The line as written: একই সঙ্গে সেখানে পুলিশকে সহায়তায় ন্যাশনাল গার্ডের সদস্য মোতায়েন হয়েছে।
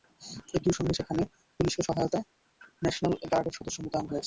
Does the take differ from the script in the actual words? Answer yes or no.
no